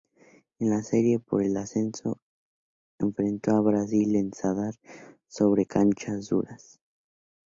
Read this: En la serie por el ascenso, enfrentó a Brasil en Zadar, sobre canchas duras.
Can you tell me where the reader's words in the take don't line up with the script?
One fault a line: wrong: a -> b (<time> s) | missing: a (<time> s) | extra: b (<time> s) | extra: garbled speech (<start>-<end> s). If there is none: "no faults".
no faults